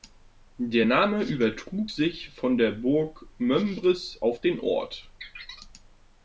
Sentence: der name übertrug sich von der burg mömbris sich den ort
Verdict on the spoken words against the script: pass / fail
fail